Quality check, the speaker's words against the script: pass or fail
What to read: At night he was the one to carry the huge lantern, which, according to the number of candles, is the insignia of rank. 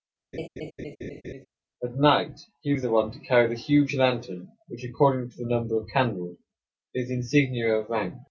pass